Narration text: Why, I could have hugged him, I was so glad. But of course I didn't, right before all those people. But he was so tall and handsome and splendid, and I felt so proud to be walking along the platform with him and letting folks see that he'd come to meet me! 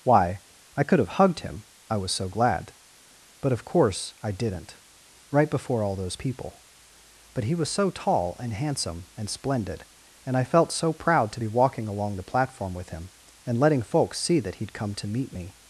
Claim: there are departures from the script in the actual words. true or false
false